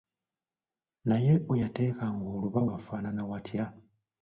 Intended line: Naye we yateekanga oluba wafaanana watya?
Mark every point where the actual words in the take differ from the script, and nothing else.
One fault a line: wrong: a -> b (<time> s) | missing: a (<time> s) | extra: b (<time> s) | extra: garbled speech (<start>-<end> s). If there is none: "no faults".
no faults